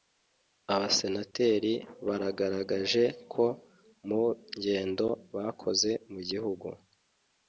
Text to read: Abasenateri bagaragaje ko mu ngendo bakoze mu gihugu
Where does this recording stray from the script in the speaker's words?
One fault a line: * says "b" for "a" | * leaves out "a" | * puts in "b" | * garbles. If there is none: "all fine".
all fine